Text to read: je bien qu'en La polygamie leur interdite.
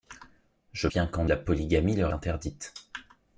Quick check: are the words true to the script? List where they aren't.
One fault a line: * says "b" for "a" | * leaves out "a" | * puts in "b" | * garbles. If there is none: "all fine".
all fine